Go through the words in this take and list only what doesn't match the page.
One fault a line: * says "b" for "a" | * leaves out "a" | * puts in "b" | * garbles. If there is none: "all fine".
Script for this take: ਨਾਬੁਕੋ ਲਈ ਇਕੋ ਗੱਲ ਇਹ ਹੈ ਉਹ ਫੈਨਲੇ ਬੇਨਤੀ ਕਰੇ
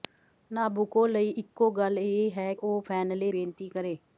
all fine